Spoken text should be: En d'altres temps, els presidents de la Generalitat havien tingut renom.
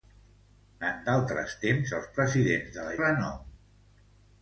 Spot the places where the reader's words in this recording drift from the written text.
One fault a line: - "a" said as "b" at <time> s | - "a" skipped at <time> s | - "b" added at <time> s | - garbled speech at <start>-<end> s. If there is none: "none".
- "Generalitat havien tingut" skipped at 3.0 s